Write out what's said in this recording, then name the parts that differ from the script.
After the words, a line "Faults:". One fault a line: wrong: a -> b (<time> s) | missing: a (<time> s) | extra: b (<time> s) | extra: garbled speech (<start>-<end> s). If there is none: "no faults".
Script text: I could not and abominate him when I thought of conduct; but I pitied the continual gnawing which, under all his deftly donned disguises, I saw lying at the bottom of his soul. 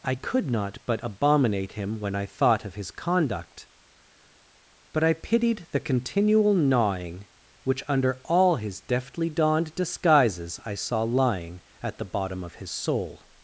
I could not but abominate him when I thought of his conduct; but I pitied the continual gnawing which, under all his deftly donned disguises, I saw lying at the bottom of his soul.
Faults:
wrong: and -> but (0.9 s)
extra: his (2.7 s)